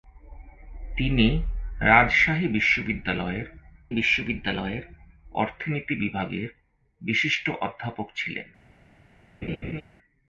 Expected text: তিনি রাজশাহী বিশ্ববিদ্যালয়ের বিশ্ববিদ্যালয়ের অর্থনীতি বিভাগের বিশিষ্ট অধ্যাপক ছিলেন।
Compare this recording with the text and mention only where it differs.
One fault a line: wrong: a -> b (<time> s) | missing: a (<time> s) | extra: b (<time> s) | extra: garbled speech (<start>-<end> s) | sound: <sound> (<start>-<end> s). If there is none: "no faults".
sound: laugh (9.4-9.8 s)